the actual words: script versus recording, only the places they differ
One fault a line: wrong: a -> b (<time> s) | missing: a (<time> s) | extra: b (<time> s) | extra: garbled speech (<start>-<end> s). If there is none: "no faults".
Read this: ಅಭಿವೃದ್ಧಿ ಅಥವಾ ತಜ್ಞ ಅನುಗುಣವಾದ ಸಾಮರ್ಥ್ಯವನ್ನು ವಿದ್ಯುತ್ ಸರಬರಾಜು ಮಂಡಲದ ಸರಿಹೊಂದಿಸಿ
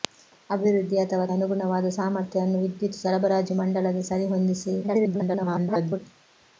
missing: ತಜ್ಞ (1.2 s)
extra: garbled speech (4.8-6.0 s)